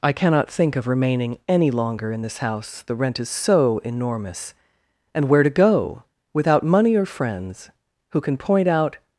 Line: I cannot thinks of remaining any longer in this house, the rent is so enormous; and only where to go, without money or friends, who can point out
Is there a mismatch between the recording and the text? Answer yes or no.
yes